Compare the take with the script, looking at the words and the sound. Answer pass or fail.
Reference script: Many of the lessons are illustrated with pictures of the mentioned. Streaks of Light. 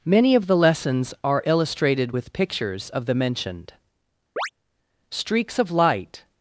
fail